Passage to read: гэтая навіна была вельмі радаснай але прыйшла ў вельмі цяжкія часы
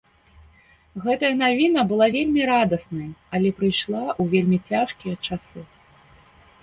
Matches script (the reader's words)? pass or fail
pass